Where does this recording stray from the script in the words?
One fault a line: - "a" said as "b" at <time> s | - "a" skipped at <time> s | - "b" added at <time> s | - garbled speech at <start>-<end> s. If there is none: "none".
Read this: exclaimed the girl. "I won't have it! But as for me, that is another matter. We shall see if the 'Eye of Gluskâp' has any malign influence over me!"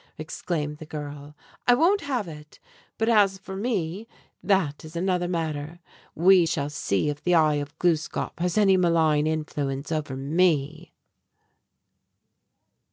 none